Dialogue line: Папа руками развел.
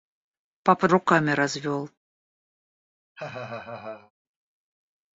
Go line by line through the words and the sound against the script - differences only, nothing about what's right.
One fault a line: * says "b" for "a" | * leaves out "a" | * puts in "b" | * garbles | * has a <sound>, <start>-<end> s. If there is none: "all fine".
* has a laugh, 3.1-4.1 s